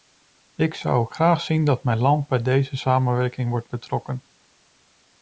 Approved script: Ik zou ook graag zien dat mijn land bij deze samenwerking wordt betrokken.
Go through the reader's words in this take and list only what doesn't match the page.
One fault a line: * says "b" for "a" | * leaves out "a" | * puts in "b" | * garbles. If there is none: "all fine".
all fine